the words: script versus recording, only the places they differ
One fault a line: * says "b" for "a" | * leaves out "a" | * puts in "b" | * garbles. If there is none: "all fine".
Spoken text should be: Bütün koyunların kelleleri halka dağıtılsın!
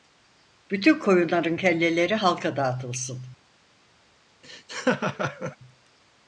all fine